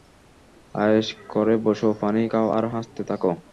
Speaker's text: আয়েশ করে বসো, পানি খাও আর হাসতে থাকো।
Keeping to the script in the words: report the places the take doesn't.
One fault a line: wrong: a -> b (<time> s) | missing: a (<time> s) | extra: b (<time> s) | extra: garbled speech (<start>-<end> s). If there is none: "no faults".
no faults